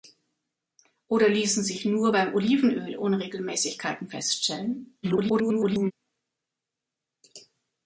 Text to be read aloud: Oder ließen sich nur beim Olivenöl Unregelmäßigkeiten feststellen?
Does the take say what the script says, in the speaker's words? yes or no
no